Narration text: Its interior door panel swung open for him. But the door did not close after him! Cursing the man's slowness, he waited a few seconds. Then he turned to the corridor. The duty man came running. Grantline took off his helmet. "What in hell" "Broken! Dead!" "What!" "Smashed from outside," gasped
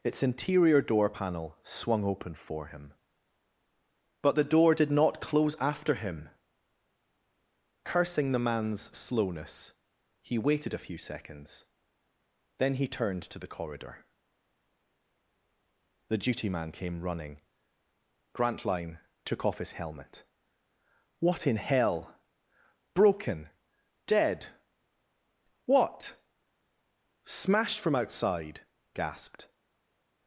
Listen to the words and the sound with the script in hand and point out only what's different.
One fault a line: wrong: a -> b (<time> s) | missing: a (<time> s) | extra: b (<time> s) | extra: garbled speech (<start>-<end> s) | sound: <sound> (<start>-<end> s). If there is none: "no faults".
no faults